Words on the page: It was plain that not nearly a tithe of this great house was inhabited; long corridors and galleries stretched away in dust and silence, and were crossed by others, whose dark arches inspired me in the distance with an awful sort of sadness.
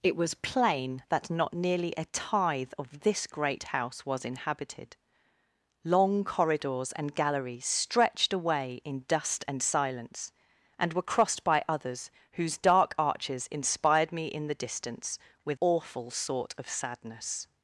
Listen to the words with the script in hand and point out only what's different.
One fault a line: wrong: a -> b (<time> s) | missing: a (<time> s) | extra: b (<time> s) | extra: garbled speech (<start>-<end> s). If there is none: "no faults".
missing: an (15.6 s)